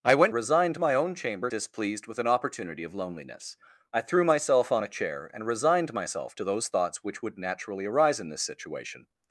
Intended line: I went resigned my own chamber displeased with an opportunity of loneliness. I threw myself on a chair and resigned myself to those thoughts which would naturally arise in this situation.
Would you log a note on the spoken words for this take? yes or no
no